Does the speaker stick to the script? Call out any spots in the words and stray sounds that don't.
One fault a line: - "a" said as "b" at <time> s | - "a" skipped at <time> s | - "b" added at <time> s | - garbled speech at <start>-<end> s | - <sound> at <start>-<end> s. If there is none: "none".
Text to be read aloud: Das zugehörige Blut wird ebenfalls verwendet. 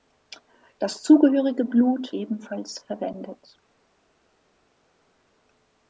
- "wird" skipped at 2.1 s